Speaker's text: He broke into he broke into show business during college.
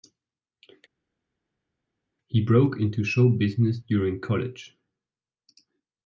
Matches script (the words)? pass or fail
fail